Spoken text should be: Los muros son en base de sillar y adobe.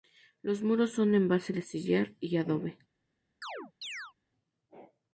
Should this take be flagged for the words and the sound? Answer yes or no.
yes